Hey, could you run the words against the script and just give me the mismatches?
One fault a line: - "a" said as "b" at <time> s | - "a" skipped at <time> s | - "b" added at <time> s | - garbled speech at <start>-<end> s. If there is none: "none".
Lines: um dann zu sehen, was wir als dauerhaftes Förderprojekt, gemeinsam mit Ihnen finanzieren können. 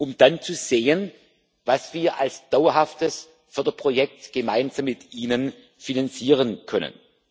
none